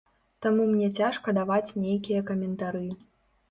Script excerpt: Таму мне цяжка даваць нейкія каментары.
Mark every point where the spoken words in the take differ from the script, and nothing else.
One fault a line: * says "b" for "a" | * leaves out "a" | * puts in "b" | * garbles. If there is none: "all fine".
all fine